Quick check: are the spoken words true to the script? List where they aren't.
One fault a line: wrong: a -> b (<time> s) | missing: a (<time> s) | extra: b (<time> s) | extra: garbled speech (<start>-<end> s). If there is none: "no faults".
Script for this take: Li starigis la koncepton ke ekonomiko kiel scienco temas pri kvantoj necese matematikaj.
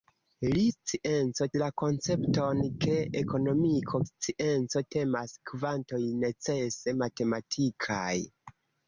wrong: starigis -> scienco (0.7 s)
missing: kiel (4.0 s)
missing: pri (5.3 s)